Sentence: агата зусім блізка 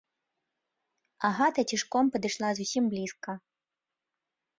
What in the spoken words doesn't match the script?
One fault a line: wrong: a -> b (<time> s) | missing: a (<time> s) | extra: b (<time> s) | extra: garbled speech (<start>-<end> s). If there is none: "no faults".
extra: цішком падышла (1.7 s)